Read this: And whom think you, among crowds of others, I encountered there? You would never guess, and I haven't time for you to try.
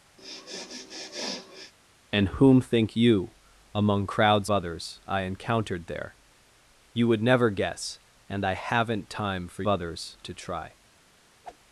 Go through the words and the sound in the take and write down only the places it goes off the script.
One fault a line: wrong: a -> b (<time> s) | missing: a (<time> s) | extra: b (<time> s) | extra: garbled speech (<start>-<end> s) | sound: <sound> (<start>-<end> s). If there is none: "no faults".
sound: sniff (0.2-1.7 s)
missing: of (4.5 s)
wrong: you -> others (9.7 s)
sound: whoosh (11.4-11.6 s)